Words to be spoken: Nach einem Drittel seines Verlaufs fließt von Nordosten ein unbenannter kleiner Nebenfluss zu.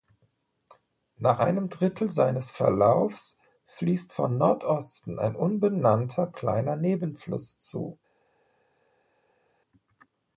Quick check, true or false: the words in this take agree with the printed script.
true